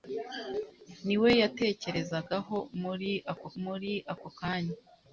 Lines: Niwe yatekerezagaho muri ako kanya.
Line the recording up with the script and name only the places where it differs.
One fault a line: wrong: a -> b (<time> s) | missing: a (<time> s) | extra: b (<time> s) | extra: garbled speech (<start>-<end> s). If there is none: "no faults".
extra: muri ako (3.6 s)